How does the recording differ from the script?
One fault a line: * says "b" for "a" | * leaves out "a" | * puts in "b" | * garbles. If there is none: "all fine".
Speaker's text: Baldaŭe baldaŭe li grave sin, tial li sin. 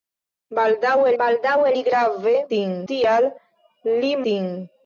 all fine